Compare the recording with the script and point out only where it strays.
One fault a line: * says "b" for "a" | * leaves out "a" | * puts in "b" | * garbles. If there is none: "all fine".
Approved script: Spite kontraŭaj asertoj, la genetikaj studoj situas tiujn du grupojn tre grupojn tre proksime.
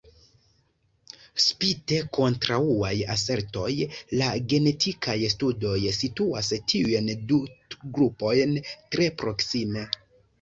* leaves out "grupojn tre"